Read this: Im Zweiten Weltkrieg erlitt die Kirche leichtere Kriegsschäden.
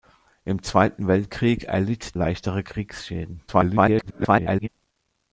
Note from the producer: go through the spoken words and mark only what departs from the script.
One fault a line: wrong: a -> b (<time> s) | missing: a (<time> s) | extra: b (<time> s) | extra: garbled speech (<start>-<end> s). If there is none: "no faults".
missing: die Kirche (2.2 s)
extra: garbled speech (3.5-4.7 s)